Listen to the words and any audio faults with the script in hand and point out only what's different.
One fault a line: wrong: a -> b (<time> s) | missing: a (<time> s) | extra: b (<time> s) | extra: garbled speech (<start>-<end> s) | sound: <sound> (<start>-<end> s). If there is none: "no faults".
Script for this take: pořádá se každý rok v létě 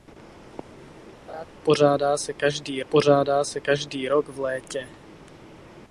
sound: laugh (1.3-1.4 s)
extra: pořádá se každý (2.9 s)